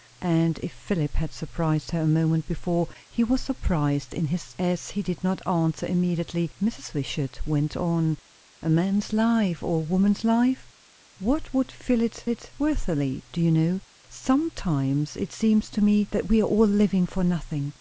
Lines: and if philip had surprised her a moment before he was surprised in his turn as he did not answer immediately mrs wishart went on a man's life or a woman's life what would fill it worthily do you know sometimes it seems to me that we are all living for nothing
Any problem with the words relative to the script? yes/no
yes